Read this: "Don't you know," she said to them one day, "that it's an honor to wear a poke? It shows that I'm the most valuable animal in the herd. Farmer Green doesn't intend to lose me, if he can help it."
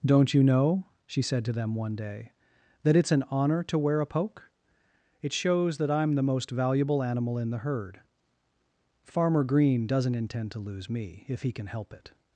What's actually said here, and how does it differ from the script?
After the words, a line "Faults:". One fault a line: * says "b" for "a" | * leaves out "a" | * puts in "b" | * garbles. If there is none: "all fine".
"Don't you know," she said to them one day, "that it's an honor to wear a poke? It shows that I'm the most valuable animal in the herd. Farmer Green doesn't intend to lose me, if he can help it."
Faults:
all fine